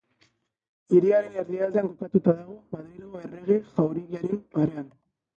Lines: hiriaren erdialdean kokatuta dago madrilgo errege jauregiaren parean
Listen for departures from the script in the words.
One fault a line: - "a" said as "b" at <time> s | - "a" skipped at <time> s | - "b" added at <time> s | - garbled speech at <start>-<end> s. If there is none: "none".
none